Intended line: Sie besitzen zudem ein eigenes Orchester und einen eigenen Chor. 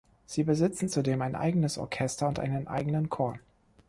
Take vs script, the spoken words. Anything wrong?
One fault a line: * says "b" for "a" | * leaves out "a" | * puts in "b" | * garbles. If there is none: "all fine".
all fine